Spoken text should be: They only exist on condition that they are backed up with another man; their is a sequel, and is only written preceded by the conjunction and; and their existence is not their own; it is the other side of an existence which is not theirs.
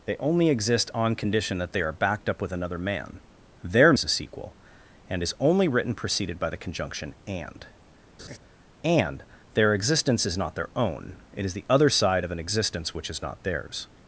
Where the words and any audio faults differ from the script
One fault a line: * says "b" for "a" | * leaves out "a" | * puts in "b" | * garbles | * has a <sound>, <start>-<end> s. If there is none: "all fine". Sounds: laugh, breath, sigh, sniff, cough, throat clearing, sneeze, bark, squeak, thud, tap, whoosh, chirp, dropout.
* has a laugh, 8.2-8.4 s